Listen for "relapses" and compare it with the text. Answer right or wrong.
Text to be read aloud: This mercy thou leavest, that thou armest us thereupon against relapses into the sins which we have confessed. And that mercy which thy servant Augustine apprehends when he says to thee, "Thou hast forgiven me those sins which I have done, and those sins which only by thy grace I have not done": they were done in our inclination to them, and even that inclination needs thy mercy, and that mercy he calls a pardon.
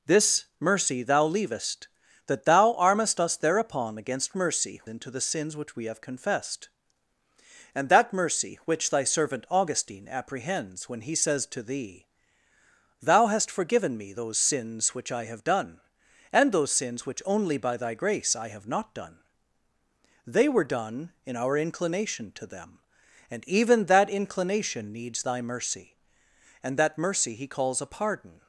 wrong